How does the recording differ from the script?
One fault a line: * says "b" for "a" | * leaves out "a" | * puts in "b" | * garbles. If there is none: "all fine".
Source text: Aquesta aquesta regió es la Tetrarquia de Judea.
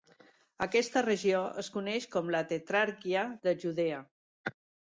* leaves out "aquesta"
* puts in "coneix com"